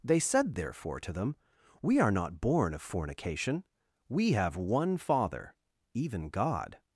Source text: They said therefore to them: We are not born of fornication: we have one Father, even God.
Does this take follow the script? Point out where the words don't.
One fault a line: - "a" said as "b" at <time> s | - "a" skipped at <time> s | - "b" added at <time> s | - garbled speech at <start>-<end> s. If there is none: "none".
none